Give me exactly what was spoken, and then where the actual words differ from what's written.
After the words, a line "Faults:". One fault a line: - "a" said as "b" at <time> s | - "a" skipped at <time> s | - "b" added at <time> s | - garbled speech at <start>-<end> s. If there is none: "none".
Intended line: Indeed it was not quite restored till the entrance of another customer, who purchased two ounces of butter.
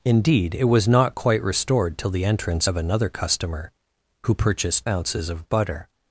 Indeed it was not quite restored till the entrance of another customer, who purchased ounces of butter.
Faults:
- "two" skipped at 4.9 s